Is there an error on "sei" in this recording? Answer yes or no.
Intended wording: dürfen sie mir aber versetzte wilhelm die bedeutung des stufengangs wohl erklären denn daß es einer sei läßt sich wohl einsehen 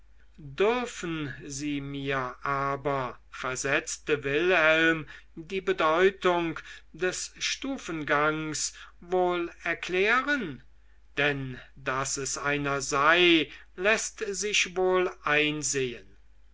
no